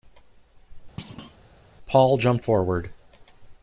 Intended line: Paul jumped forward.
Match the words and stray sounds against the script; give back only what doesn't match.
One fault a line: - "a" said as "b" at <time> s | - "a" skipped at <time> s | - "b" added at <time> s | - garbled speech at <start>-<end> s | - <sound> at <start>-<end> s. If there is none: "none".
- thud at 1.0-1.4 s